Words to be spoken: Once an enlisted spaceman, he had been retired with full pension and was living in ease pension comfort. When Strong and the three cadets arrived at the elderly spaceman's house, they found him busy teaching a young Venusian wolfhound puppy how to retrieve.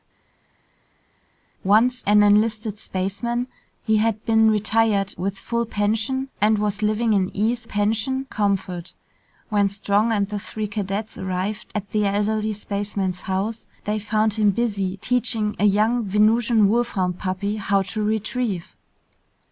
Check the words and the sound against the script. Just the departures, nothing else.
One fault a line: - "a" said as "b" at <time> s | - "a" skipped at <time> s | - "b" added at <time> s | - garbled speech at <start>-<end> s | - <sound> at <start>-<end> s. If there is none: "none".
none